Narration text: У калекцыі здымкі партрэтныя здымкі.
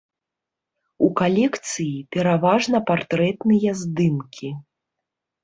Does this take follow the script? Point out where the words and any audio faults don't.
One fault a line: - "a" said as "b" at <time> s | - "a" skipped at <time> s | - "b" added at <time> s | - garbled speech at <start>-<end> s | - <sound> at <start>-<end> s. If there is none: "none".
- "здымкі" said as "пераважна" at 2.1 s